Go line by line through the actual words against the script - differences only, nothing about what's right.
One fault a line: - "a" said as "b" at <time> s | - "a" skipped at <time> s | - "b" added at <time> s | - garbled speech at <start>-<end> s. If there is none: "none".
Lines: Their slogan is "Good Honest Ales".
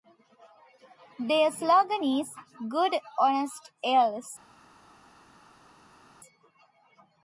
none